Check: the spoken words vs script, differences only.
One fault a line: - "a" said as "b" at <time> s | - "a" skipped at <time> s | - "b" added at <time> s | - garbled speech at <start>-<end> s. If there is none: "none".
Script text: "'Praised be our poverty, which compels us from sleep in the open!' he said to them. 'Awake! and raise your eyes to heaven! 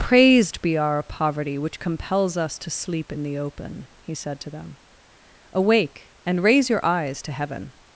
- "from" said as "to" at 2.6 s